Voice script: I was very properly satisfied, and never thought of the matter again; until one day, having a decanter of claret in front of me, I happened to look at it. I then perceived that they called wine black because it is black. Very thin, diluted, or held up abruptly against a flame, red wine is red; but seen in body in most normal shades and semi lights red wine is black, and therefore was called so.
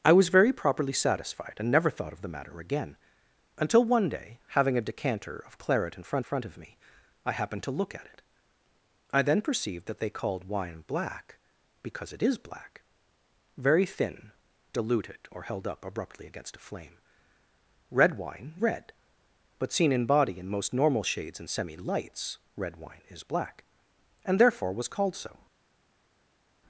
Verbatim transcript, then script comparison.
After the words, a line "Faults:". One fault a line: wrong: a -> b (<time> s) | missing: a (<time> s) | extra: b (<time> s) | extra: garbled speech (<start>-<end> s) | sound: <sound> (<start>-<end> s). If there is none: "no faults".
I was very properly satisfied, and never thought of the matter again; until one day, having a decanter of claret in front front of me, I happened to look at it. I then perceived that they called wine black because it is black. Very thin, diluted, or held up abruptly against a flame, red wine red; but seen in body in most normal shades and semi lights red wine is black, and therefore was called so.
Faults:
extra: front (6.2 s)
missing: is (18.6 s)